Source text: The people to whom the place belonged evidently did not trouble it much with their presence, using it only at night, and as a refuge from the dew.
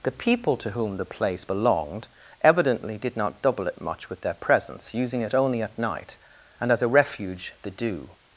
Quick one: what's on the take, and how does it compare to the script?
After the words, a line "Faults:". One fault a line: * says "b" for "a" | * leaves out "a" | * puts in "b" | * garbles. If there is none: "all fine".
The people to whom the place belonged evidently did not double it much with their presence, using it only at night, and as a refuge the dew.
Faults:
* says "double" for "trouble"
* leaves out "from"